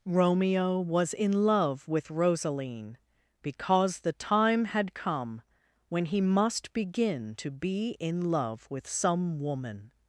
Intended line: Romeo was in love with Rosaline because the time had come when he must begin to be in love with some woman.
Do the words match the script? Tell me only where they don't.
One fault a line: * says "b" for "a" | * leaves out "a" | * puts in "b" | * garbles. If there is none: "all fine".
all fine